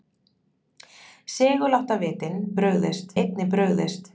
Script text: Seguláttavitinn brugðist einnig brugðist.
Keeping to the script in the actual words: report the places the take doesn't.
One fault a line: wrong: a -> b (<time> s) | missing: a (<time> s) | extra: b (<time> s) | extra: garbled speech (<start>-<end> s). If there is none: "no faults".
no faults